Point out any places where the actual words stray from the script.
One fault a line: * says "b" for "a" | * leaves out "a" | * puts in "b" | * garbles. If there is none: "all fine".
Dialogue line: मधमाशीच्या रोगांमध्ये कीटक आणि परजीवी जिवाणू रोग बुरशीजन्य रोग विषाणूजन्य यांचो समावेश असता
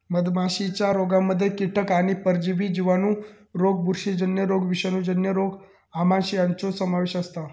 * puts in "रोग आमांश"